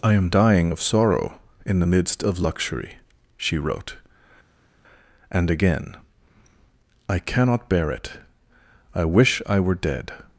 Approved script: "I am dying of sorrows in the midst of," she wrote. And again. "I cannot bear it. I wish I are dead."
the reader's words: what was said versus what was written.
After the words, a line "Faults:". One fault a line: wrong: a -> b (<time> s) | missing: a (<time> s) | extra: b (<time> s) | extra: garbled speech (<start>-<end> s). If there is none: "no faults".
"I am dying of sorrow in the midst of luxury," she wrote. And again. "I cannot bear it. I wish I were dead."
Faults:
wrong: sorrows -> sorrow (0.8 s)
extra: luxury (2.4 s)
wrong: are -> were (9.6 s)